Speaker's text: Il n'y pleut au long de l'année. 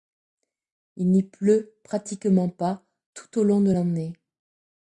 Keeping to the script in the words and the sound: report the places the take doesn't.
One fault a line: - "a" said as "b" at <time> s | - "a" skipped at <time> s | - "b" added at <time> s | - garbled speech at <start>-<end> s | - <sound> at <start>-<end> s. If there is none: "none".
- "pratiquement pas tout" added at 1.8 s